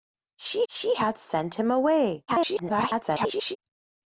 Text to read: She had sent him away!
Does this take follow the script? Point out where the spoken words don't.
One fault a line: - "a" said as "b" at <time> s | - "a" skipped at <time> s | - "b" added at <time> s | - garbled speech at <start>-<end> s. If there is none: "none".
- "she" added at 0.7 s
- garbled speech at 2.3-3.6 s